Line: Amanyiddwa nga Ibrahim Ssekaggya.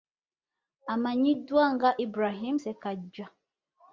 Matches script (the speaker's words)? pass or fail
pass